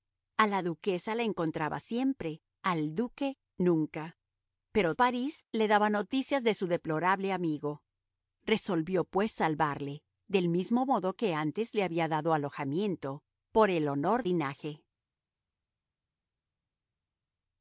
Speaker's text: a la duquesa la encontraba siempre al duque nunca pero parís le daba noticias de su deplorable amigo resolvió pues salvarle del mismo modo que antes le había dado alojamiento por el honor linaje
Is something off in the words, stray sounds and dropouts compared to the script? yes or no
no